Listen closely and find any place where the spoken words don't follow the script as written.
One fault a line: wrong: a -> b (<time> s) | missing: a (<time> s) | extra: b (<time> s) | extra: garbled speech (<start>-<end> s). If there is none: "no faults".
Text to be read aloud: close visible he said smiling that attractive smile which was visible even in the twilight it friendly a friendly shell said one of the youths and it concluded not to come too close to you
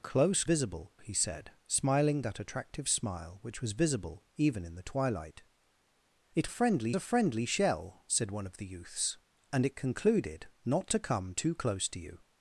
no faults